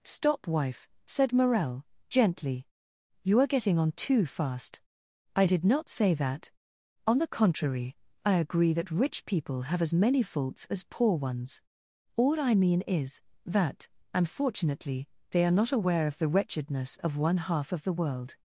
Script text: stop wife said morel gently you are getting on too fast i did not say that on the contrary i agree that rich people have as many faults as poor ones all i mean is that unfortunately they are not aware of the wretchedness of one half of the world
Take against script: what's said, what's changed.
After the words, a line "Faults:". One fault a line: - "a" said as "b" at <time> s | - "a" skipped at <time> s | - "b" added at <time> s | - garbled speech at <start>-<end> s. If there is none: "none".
stop wife said morel gently you are getting on too fast i did not say that on the contrary i agree that rich people have as many faults as poor ones all i mean is that unfortunately they are not aware of the wretchedness of one half of the world
Faults:
none